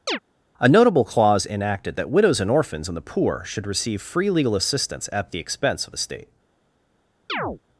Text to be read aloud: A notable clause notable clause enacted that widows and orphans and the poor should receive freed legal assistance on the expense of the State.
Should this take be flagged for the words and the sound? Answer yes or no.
yes